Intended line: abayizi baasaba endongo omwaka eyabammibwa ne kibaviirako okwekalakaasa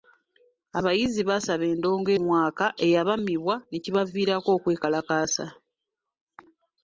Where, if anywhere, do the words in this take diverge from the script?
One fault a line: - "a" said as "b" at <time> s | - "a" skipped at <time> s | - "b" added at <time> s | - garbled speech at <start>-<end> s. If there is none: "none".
none